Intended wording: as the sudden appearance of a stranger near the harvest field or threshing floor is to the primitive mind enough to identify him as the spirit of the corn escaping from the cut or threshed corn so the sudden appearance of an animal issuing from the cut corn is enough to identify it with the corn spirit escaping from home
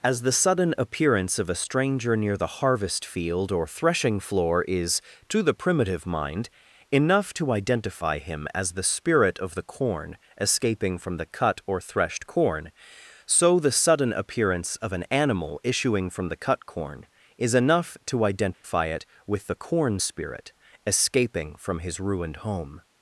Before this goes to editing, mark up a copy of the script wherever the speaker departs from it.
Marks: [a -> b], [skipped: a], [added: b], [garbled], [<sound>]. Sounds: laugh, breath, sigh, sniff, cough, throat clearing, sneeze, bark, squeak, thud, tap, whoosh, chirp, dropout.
as the sudden appearance of a stranger near the harvest field or threshing floor is to the primitive mind enough to identify him as the spirit of the corn escaping from the cut or threshed corn so the sudden appearance of an animal issuing from the cut corn is enough to identify [dropout] it with the corn spirit escaping from [added: his ruined] home